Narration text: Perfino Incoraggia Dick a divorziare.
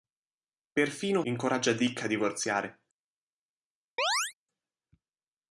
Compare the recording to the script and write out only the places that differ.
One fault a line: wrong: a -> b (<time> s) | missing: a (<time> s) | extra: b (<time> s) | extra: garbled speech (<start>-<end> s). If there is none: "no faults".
no faults